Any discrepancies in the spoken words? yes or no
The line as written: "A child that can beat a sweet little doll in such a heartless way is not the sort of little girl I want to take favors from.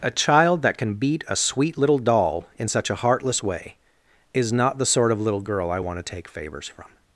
no